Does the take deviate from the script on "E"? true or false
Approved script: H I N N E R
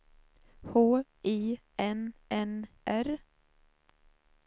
true